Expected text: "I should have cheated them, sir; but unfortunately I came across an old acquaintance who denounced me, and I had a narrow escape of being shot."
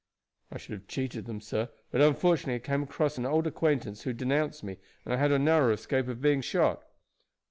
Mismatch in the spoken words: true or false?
false